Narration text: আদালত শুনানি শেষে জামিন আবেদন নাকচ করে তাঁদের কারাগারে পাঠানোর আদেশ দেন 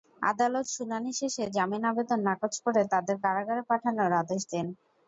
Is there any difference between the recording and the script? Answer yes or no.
no